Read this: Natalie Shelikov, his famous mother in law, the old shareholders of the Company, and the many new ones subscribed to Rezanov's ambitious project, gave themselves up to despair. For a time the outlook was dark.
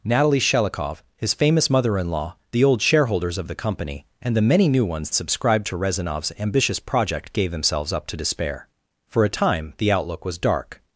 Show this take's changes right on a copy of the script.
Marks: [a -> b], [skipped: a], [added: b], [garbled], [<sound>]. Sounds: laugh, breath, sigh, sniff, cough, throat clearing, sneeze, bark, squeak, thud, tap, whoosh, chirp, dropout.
Natalie Shelikov, his famous mother in law, the old shareholders of the Company, and the many new ones subscribed to Rezanov's ambitious project, gave themselves up to despair. For a time the outlook was dark.